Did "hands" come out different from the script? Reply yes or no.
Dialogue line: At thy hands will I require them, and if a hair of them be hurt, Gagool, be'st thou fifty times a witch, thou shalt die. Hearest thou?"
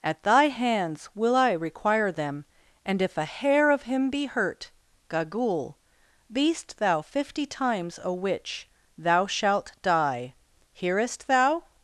no